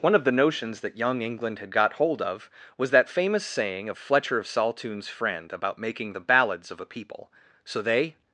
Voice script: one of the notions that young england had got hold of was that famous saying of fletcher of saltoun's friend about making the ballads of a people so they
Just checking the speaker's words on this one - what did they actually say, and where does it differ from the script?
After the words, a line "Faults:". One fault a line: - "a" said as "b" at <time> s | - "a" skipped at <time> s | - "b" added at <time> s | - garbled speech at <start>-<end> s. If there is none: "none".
one of the notions that young england had got hold of was that famous saying of fletcher of saltoun's friend about making the ballads of a people so they
Faults:
none